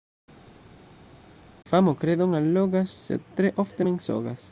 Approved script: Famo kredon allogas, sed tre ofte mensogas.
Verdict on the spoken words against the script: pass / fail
pass